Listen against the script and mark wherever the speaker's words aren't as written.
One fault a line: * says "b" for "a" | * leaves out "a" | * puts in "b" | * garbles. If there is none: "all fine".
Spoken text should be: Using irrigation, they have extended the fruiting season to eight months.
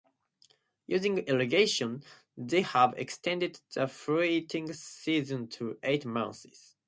all fine